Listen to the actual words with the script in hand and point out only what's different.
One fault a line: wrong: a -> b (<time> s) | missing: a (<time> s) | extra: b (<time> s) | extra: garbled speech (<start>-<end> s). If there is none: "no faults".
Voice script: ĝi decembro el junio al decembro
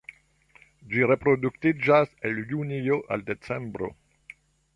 wrong: decembro -> reproduktiĝas (1.1 s)